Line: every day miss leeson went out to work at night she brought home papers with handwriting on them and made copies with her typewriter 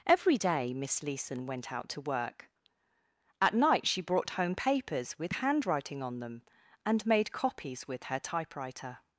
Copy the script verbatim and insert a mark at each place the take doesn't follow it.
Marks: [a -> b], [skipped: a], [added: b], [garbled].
every day miss leeson went out to work at night she brought home papers with handwriting on them and made copies with her typewriter